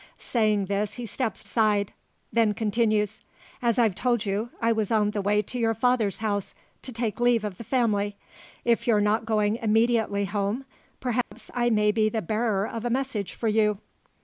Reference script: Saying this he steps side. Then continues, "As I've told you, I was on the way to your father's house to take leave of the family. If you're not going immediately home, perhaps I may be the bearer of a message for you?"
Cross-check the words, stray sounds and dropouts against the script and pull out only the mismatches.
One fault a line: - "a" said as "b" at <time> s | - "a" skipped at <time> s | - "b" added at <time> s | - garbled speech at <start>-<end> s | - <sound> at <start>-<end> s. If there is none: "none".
- dropout at 11.2-11.3 s